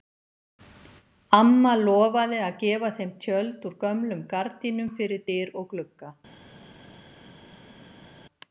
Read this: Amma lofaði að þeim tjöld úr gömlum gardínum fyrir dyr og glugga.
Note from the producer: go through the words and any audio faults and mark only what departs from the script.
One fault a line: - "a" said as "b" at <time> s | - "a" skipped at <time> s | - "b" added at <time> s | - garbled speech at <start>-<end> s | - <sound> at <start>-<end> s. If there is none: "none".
- "gefa" added at 2.6 s